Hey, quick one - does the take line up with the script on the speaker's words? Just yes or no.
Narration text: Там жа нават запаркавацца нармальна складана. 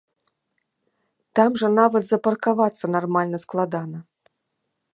yes